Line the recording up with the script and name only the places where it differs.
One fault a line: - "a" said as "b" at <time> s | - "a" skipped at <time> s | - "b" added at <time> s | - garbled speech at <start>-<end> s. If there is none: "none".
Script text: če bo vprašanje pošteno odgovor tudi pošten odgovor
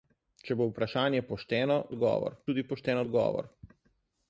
none